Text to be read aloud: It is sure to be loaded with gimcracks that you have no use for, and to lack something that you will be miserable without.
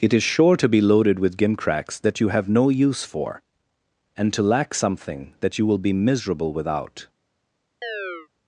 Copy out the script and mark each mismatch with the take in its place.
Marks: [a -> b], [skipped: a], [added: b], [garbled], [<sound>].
It is sure to be loaded with gimcracks that you have no use for, and to lack something that you will be miserable without. [chirp]